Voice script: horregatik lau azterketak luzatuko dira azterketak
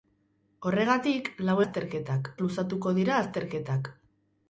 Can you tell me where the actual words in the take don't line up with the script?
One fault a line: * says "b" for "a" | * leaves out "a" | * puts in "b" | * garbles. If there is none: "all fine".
all fine